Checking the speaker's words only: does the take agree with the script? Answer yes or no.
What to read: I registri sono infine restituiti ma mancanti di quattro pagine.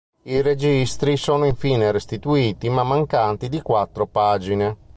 yes